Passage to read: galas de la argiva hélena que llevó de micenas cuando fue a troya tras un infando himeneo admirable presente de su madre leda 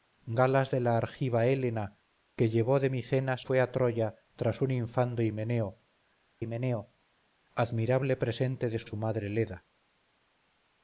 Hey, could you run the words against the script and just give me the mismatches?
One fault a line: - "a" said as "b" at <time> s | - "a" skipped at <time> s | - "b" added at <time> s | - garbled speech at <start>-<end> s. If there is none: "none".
- "cuando" skipped at 3.5 s
- "himeneo" added at 6.4 s
- "su" added at 8.8 s